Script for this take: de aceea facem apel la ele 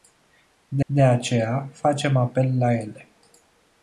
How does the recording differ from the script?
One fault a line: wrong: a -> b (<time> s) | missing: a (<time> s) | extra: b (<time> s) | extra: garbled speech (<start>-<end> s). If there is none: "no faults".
extra: de (0.8 s)